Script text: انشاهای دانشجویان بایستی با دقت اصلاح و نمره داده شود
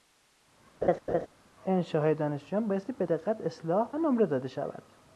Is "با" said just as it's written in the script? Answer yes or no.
no